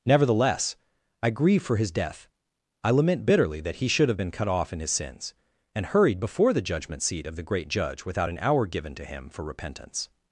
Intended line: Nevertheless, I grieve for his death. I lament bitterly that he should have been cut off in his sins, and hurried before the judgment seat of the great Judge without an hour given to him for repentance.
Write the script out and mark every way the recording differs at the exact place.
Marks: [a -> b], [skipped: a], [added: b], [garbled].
Nevertheless, I grieve for his death. I lament bitterly that he should have been cut off in his sins, and hurried before the judgment seat of the great Judge without an hour given to him for repentance.